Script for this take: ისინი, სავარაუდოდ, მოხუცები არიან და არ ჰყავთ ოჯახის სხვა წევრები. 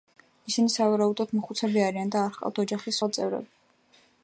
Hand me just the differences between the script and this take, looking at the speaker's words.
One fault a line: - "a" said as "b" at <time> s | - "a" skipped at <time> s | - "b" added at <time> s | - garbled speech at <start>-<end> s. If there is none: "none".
none